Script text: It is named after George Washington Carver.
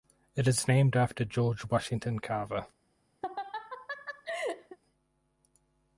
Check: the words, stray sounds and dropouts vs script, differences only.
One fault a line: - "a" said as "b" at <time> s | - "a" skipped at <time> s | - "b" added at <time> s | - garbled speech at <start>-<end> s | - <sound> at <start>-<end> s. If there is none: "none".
- laugh at 3.2-4.8 s